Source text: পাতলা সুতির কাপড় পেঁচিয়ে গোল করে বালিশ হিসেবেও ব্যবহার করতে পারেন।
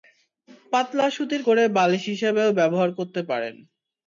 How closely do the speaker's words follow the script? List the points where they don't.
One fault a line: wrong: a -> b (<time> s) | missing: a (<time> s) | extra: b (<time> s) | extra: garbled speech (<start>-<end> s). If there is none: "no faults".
missing: কাপড় পেঁচিয়ে গোল (1.4 s)